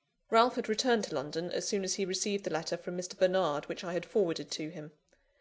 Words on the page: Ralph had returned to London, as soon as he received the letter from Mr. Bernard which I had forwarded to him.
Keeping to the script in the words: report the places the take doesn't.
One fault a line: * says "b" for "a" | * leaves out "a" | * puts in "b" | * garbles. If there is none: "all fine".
all fine